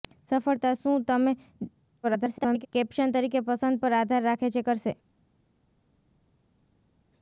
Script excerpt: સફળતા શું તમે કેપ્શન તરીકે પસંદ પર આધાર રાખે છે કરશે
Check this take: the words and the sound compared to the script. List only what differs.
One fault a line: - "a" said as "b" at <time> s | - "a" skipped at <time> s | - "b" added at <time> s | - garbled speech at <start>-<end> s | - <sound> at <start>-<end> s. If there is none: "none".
- garbled speech at 2.0-2.7 s